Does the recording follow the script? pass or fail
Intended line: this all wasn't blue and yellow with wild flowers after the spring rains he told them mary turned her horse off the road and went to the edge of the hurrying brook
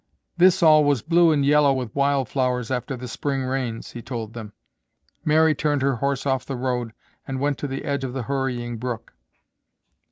fail